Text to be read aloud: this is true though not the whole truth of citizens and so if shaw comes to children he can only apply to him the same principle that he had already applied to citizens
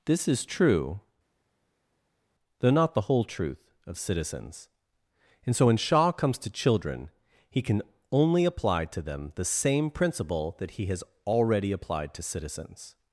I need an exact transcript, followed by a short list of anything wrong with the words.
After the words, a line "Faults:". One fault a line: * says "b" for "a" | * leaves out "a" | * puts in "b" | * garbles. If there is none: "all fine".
this is true though not the whole truth of citizens and so when shaw comes to children he can only apply to them the same principle that he has already applied to citizens
Faults:
* says "when" for "if"
* says "them" for "him"
* says "has" for "had"